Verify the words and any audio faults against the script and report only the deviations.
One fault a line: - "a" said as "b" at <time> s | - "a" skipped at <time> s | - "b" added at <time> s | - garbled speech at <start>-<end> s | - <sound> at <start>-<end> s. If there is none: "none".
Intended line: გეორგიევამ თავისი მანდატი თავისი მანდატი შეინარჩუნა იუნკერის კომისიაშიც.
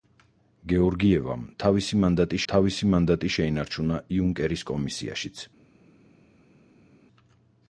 none